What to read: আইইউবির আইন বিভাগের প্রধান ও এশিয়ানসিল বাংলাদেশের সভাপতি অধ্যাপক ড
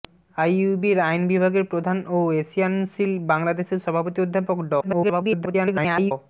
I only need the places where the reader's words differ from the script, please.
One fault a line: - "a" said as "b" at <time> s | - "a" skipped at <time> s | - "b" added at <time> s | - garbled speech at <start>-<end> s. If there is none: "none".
- garbled speech at 4.8-6.1 s